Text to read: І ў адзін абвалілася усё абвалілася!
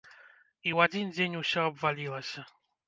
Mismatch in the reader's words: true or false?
true